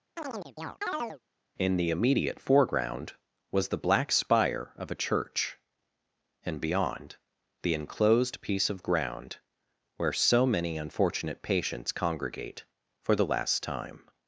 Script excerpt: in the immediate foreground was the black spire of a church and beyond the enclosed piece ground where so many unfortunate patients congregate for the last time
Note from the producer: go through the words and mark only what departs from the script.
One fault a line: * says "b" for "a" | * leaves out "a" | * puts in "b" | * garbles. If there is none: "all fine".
* puts in "of"